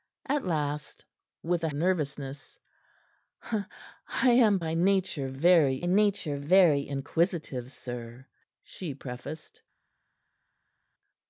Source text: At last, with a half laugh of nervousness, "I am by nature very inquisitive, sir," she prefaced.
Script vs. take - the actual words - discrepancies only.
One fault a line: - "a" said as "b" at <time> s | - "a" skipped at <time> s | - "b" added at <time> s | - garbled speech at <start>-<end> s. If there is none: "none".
- "half laugh of" skipped at 1.7 s
- "nature very" added at 5.8 s